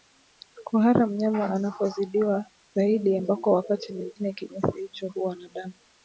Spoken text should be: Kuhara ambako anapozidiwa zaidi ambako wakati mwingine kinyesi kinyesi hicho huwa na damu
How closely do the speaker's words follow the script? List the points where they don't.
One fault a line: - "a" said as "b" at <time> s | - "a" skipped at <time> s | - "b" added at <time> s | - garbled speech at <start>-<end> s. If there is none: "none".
- "ambako" said as "mnyama" at 1.1 s
- "kinyesi" skipped at 4.8 s